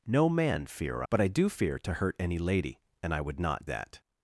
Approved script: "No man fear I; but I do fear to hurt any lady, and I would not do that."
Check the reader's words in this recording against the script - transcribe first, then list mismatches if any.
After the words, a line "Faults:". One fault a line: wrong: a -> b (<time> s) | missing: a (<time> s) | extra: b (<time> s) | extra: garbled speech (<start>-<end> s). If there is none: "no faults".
"No man fear; but I do fear to hurt any lady, and I would not that."
Faults:
missing: I (1.0 s)
missing: do (3.7 s)